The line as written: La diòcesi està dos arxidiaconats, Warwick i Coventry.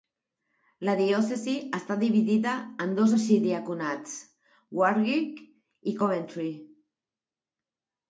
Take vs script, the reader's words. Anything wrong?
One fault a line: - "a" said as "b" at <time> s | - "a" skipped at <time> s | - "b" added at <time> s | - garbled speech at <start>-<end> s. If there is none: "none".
- "dividida en" added at 2.0 s